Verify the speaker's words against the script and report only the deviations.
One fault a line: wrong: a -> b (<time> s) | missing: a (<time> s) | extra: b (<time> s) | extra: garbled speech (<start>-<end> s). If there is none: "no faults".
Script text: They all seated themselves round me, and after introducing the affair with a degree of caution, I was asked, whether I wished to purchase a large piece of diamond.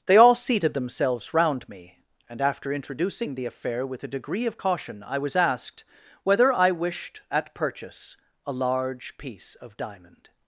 wrong: to -> at (7.3 s)